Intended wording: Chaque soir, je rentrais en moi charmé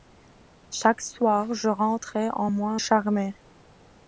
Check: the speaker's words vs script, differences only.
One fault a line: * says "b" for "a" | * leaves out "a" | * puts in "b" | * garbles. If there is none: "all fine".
all fine